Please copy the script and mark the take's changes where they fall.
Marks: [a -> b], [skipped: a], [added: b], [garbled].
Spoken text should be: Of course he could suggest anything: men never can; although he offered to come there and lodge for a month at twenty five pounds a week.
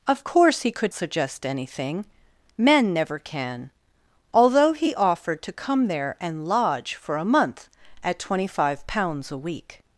Of course he could suggest anything: men never can; although he offered to come there and lodge for a month at twenty five pounds a week.